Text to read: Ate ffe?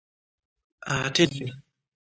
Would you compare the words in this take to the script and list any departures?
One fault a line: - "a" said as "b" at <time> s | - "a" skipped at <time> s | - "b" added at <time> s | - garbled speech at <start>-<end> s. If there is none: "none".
none